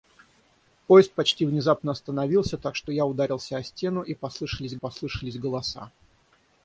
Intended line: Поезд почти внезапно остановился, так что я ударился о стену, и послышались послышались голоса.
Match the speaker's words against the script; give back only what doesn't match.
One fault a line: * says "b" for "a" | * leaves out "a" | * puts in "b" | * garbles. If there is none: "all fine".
all fine